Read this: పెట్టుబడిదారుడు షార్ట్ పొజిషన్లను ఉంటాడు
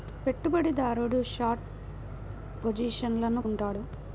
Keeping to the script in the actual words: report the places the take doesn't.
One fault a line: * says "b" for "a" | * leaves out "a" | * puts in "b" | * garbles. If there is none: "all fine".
all fine